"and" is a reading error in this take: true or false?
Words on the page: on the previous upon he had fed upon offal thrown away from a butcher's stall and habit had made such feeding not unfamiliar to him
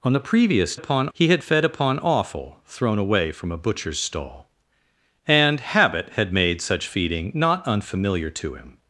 false